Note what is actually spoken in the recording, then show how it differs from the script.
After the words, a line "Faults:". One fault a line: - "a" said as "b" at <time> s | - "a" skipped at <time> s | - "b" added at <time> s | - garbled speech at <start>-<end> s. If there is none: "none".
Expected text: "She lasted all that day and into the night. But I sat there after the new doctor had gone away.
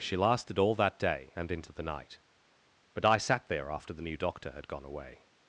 "She lasted all that day and into the night. But I sat there after the new doctor had gone away.
Faults:
none